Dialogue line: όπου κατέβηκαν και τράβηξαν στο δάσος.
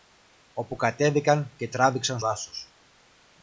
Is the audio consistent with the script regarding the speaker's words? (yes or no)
no